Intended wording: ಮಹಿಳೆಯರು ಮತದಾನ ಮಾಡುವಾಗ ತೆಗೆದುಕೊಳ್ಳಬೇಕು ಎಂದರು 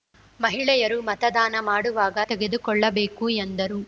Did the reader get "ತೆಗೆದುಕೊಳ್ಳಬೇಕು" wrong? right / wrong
right